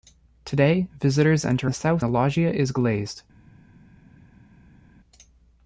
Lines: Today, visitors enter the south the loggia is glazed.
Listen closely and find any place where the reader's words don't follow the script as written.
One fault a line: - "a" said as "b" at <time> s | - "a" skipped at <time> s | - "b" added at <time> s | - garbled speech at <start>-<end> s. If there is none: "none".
none